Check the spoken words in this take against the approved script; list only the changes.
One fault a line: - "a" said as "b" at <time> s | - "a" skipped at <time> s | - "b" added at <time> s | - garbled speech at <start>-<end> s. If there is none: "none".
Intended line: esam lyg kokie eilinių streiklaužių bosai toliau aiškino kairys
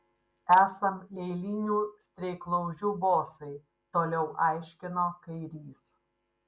- "lyg kokie" skipped at 0.9 s